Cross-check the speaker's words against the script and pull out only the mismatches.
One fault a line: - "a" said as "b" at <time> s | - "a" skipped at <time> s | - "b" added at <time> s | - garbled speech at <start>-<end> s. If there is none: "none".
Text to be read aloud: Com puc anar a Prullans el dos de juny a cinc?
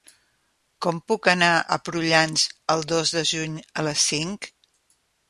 - "les" added at 3.9 s